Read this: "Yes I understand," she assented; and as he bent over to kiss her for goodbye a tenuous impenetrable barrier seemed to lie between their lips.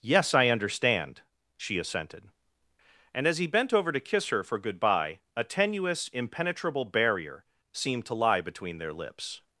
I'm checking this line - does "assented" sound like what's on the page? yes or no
yes